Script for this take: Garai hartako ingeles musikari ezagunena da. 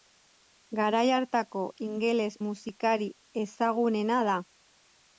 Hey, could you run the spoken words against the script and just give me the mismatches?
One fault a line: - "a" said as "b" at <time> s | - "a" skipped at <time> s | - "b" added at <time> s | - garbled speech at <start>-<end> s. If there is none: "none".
none